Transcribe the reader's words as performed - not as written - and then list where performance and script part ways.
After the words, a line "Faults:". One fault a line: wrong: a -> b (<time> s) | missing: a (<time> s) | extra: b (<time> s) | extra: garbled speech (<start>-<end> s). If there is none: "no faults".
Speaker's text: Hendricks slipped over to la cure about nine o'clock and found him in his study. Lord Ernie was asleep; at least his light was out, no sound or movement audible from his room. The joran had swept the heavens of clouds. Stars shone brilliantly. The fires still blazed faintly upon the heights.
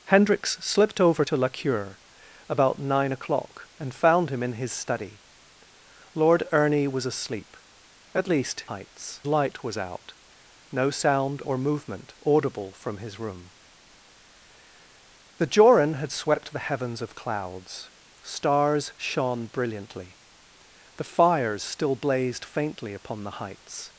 Hendricks slipped over to la cure about nine o'clock and found him in his study. Lord Ernie was asleep; at least heights light was out, no sound or movement audible from his room. The joran had swept the heavens of clouds. Stars shone brilliantly. The fires still blazed faintly upon the heights.
Faults:
wrong: his -> heights (8.7 s)